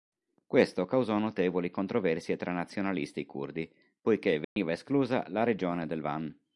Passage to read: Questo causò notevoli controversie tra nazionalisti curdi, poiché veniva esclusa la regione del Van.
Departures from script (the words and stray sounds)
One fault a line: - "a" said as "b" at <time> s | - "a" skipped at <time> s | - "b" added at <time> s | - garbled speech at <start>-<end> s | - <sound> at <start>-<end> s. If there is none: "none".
- dropout at 4.4-4.6 s